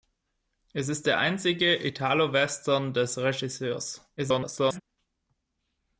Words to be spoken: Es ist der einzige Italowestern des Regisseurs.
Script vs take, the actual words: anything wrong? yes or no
yes